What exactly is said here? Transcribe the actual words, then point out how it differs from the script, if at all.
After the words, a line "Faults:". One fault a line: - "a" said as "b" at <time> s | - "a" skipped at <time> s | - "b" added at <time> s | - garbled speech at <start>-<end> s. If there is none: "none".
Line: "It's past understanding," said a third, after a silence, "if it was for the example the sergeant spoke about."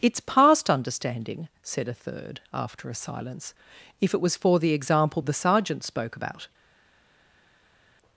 "It's past understanding," said a third, after a silence, "if it was for the example the sergeant spoke about."
Faults:
none